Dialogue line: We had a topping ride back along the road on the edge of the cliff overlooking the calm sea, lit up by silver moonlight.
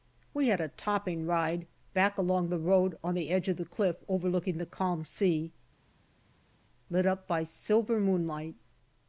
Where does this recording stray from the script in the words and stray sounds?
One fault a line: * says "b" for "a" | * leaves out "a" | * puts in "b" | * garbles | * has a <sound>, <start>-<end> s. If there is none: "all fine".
all fine